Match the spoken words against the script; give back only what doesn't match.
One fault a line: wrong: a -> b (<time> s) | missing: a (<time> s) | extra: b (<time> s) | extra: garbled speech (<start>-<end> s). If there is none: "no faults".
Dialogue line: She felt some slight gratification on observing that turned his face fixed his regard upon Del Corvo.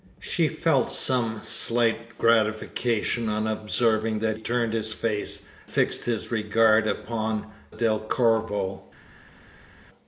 no faults